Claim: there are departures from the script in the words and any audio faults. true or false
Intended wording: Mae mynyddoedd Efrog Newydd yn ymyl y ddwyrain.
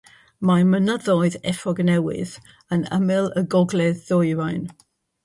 true